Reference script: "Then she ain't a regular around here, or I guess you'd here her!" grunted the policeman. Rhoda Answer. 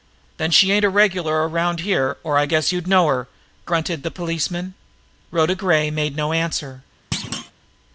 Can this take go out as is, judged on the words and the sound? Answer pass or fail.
fail